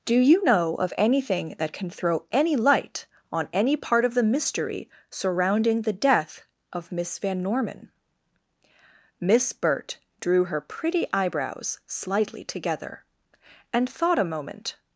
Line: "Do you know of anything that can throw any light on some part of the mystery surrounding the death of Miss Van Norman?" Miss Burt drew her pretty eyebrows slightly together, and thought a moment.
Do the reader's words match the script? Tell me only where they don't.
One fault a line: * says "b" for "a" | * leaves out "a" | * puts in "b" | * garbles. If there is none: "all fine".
* says "any" for "some"